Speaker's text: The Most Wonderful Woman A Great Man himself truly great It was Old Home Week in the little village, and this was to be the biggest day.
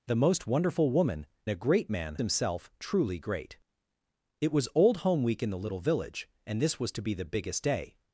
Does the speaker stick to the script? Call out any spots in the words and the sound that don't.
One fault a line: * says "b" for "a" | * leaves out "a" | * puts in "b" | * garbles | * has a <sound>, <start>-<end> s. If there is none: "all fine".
all fine